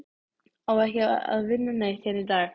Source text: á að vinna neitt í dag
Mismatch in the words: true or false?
true